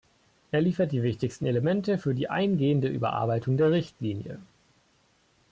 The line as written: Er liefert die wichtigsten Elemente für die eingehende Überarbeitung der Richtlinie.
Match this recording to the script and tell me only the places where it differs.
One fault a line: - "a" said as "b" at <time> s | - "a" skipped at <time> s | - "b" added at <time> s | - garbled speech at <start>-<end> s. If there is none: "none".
none